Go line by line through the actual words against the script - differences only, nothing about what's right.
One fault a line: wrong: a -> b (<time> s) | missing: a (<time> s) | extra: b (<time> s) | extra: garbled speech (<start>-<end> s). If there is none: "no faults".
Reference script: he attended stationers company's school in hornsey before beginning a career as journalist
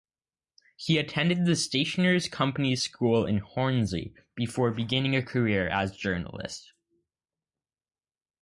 extra: the (1.4 s)